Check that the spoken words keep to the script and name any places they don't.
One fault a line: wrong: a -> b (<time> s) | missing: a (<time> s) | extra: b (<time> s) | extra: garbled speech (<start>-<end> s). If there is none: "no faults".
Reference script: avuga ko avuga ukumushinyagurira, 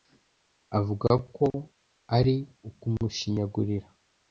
wrong: avuga -> ari (2.2 s)